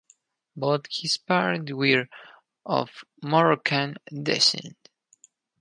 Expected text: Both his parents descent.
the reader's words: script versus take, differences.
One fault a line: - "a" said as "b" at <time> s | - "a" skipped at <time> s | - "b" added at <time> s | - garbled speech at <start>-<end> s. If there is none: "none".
- "were of Moroccan" added at 1.7 s